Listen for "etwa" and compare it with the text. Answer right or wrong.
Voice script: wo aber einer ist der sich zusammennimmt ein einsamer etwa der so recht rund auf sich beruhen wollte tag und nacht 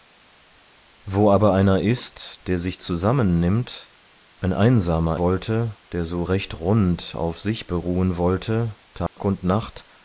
wrong